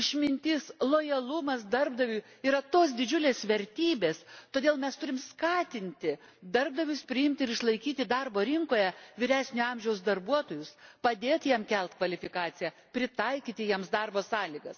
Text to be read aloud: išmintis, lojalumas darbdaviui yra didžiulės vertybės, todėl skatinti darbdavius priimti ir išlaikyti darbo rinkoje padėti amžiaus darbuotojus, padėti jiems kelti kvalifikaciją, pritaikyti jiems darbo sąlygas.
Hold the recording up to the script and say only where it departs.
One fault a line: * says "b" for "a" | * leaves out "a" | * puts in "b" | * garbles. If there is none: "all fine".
* puts in "tos"
* puts in "mes turime"
* says "vyresnio" for "padėti"